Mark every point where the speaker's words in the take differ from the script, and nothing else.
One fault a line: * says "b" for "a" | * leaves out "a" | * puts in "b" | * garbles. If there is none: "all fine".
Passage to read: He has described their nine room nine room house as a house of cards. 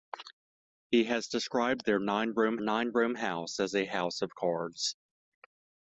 all fine